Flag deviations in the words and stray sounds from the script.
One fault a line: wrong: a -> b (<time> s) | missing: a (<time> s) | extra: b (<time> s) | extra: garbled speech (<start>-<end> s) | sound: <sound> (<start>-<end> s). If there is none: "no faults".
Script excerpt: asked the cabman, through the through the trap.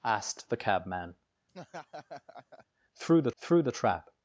sound: laugh (1.5-2.7 s)